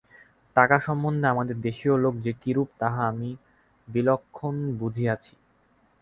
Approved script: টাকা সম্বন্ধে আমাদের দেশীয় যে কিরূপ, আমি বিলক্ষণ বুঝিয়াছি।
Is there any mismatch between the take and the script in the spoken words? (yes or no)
yes